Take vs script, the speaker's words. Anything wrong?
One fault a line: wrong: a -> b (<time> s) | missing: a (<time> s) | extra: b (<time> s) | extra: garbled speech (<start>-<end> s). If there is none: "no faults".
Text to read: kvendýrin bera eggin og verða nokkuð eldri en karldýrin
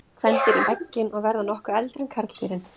missing: bera (0.7 s)